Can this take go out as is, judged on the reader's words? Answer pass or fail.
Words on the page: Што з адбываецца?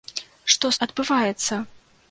pass